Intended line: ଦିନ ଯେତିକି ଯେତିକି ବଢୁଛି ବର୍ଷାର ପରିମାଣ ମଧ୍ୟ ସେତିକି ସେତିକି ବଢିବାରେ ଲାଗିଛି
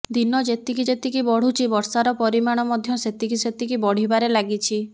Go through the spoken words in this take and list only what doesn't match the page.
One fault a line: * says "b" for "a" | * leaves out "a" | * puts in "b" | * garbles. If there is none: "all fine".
all fine